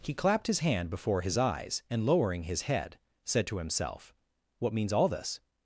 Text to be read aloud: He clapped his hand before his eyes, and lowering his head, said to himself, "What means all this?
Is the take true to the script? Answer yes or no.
yes